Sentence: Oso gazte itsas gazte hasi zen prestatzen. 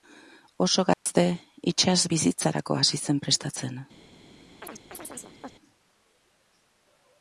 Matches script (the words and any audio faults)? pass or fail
fail